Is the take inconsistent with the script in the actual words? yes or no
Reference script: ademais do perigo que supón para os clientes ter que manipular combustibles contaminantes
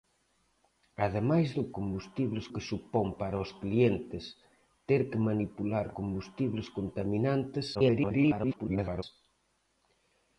yes